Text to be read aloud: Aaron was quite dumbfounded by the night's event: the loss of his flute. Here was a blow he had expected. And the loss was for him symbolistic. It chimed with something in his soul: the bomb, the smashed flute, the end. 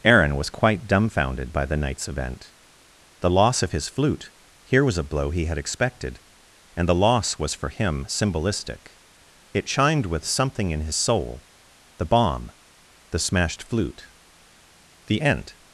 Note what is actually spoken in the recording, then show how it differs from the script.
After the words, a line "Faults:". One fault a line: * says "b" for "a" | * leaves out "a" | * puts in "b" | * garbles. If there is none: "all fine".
Aaron was quite dumbfounded by the night's event: the loss of his flute. Here was a blow he had expected. And the loss was for him symbolistic. It chimed with something in his soul: the bomb, the smashed flute, the end.
Faults:
all fine